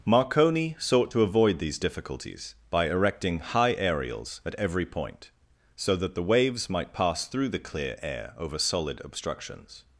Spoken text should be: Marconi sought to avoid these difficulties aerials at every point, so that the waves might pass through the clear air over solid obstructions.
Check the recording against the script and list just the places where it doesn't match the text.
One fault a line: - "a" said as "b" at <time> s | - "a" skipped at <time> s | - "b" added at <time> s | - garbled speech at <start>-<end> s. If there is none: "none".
- "by erecting high" added at 2.7 s